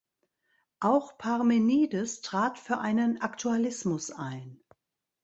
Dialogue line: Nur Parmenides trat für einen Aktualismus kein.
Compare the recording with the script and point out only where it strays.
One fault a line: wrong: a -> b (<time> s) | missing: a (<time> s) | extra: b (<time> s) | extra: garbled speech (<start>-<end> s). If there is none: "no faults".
wrong: Nur -> Auch (0.8 s)
wrong: kein -> ein (4.1 s)